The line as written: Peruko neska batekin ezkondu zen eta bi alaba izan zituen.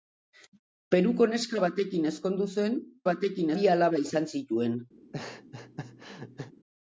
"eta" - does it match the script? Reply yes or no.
no